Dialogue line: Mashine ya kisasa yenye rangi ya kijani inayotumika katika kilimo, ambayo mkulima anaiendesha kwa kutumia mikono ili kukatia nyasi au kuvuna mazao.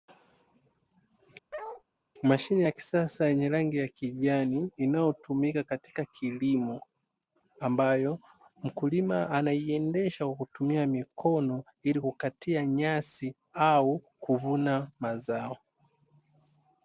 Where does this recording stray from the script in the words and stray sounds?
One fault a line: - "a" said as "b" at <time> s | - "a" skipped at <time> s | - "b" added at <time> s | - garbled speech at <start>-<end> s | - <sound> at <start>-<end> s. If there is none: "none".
- bark at 1.5-1.8 s